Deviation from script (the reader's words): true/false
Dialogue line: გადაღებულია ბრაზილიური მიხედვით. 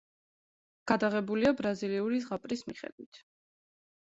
true